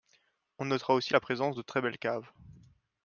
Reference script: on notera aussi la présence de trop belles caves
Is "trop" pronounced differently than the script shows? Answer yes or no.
yes